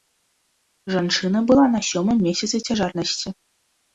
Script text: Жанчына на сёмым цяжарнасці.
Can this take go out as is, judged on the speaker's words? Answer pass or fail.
fail